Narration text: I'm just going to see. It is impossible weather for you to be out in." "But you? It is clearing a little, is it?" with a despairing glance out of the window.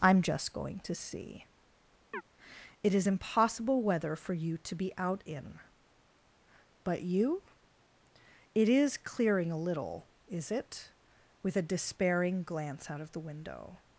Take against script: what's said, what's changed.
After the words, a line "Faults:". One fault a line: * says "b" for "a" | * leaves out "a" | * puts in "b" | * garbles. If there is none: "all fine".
I'm just going to see. It is impossible weather for you to be out in." "But you? It is clearing a little, is it?" with a despairing glance out of the window.
Faults:
all fine